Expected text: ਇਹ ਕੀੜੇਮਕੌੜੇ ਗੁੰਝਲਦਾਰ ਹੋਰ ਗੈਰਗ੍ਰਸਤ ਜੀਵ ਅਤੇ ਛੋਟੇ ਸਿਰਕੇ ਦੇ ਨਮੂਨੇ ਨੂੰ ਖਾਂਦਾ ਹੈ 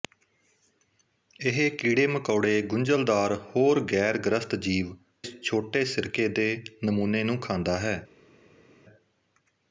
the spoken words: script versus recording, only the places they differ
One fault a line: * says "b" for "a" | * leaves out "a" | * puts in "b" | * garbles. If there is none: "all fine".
* leaves out "ਅਤੇ"